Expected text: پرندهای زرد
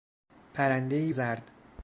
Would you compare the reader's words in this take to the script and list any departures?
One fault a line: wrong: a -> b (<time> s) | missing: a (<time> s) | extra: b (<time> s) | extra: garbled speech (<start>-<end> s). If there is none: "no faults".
no faults